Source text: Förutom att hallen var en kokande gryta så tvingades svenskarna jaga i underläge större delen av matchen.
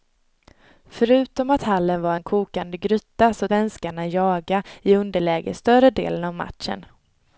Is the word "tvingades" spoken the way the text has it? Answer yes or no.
no